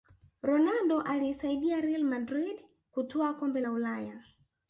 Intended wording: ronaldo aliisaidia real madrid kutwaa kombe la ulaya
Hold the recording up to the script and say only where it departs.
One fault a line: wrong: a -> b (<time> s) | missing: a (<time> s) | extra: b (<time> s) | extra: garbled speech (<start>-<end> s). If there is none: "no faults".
no faults